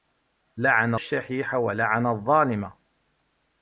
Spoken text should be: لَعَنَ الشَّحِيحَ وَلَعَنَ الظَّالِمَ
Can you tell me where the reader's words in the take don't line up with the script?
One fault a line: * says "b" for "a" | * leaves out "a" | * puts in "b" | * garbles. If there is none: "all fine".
all fine